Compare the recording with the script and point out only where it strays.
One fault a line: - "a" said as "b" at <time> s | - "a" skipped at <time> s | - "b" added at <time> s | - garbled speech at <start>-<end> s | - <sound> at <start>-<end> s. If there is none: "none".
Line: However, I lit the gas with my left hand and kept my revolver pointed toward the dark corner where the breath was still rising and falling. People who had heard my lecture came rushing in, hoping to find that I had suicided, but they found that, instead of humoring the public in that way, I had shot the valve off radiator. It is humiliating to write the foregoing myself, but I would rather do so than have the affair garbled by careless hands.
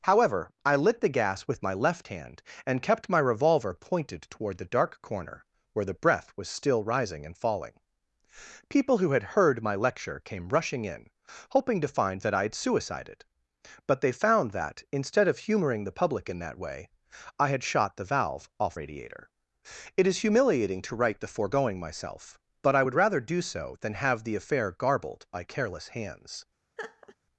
- laugh at 26.8-27.2 s